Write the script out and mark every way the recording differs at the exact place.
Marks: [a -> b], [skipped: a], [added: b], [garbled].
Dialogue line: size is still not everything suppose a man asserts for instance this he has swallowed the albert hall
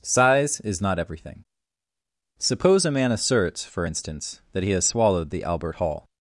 size is [skipped: still] not everything suppose a man asserts for instance [this -> that] he has swallowed the albert hall